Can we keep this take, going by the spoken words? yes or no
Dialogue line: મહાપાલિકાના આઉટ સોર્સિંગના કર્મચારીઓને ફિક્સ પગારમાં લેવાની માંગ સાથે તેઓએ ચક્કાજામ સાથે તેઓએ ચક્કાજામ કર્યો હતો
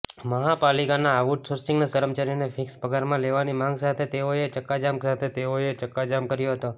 yes